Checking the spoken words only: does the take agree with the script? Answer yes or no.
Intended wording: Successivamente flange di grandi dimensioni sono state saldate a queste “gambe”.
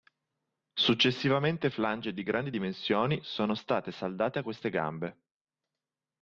yes